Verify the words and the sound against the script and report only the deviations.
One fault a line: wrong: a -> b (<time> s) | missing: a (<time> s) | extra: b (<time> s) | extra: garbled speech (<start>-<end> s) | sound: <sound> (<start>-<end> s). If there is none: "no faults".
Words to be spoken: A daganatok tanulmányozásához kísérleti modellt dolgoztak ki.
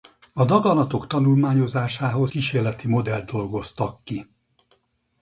no faults